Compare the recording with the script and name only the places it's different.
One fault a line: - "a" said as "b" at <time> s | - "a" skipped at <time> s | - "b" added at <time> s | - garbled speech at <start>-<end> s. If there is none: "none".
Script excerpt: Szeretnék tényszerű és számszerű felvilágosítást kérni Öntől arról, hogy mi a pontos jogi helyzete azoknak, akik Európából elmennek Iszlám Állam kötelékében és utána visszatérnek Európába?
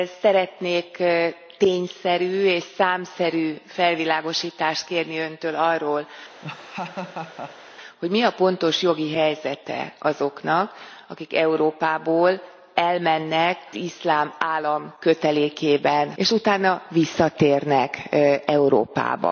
none